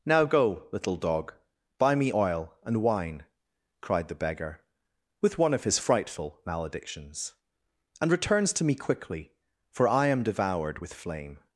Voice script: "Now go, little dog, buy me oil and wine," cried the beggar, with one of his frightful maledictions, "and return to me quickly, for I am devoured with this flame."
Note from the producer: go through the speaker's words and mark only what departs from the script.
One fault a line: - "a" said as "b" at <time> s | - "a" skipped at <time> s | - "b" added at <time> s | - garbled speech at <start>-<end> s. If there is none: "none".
- "return" said as "returns" at 8.1 s
- "this" skipped at 10.9 s